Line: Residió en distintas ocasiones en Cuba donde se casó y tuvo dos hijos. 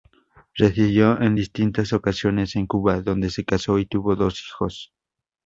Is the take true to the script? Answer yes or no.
yes